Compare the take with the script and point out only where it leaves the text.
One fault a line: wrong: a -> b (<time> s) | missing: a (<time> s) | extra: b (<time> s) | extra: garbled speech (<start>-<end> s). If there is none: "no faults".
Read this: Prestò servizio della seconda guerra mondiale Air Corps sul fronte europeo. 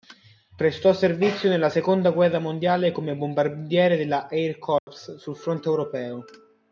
wrong: della -> nella (1.5 s)
extra: come bombardiere della (2.9 s)